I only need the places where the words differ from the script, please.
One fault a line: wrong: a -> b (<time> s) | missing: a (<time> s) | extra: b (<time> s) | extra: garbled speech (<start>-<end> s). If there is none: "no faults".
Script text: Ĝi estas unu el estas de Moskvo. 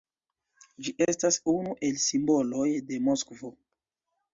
wrong: estas -> simboloj (2.1 s)